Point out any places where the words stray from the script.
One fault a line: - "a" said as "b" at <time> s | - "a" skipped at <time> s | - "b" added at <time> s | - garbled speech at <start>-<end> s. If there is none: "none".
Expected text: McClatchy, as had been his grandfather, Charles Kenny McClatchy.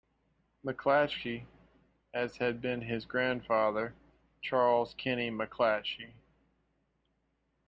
none